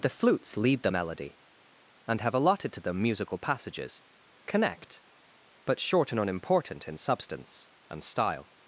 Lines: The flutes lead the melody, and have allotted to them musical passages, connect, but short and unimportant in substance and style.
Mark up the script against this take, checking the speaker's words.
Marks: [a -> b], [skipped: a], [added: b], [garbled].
The flutes lead the melody, and have allotted to them musical passages, connect, but short and unimportant in substance and style.